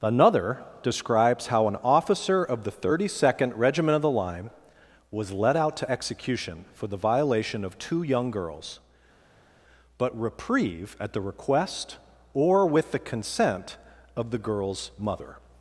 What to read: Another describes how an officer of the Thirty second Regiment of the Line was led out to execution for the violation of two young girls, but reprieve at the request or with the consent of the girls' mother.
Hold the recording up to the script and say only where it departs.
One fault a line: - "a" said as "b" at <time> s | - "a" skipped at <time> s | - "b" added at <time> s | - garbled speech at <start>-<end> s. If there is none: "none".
none